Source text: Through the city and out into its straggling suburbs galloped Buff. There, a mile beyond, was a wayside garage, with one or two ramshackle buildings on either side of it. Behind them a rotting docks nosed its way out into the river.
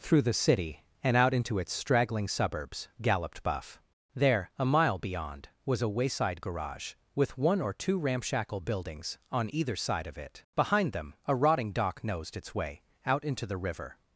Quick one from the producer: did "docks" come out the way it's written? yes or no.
no